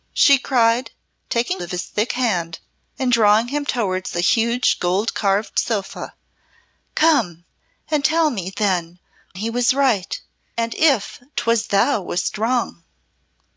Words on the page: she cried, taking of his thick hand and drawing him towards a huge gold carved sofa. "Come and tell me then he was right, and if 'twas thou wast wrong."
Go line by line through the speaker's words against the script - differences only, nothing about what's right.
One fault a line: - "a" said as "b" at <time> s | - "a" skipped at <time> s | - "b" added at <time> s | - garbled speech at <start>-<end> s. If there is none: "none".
none